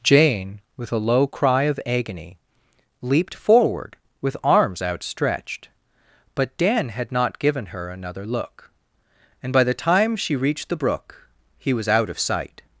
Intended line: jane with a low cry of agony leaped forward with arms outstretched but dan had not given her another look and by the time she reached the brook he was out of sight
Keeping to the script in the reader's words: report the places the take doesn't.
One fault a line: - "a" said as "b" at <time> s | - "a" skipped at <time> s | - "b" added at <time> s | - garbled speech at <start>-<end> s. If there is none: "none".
none